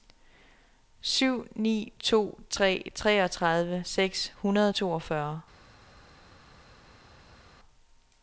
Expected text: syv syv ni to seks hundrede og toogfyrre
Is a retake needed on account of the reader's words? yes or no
yes